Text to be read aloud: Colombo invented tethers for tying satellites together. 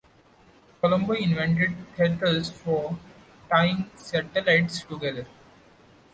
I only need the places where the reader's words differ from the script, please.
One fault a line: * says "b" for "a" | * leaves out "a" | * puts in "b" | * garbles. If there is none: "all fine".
all fine